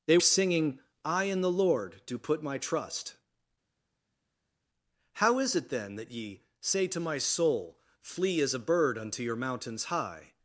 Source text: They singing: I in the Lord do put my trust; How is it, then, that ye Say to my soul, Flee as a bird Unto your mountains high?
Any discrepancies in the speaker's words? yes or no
no